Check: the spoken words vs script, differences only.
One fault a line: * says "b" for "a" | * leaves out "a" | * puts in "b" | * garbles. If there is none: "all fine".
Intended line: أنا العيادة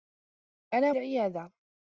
all fine